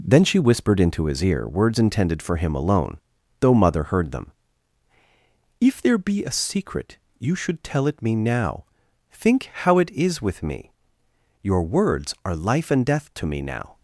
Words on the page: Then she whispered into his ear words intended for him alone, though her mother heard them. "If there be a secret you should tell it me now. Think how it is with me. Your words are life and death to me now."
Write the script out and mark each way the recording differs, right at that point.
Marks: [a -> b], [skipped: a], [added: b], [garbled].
Then she whispered into his ear words intended for him alone, though [skipped: her] mother heard them. "If there be a secret you should tell it me now. Think how it is with me. Your words are life and death to me now."